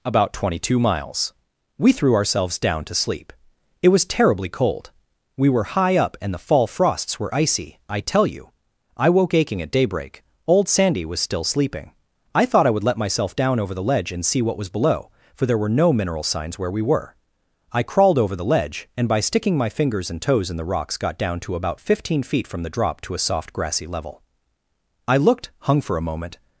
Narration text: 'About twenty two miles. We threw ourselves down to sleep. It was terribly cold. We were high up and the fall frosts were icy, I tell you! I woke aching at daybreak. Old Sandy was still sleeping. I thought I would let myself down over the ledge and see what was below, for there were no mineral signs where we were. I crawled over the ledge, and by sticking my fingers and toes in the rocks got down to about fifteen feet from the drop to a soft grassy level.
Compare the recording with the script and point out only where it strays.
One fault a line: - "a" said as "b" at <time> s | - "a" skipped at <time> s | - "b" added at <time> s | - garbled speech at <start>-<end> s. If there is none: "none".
- "I looked hung for a moment" added at 25.1 s